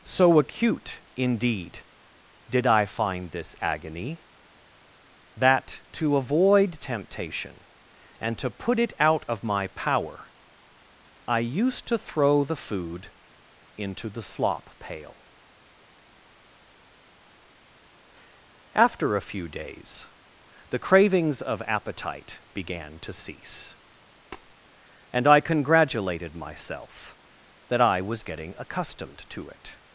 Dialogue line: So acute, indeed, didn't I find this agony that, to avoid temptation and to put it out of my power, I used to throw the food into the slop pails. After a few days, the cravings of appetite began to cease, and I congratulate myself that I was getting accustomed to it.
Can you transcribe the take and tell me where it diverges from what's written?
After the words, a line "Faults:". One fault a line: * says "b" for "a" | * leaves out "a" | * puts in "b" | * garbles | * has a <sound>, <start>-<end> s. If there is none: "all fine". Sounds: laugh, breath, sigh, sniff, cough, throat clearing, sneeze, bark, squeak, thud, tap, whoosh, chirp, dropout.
So acute, indeed, did I find this agony that, to avoid temptation and to put it out of my power, I used to throw the food into the slop pail. After a few days, the cravings of appetite began to cease, and I congratulated myself that I was getting accustomed to it.
Faults:
* says "did" for "didn't"
* says "pail" for "pails"
* has a tap, 24.3-24.5 s
* says "congratulated" for "congratulate"